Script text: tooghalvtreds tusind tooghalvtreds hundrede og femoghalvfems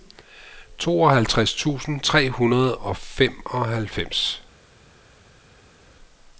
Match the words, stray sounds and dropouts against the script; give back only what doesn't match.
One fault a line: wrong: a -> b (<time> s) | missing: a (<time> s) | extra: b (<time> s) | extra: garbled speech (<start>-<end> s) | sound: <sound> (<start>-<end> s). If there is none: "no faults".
wrong: tooghalvtreds -> tre (2.0 s)